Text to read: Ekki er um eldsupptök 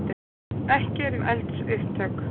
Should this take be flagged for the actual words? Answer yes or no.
no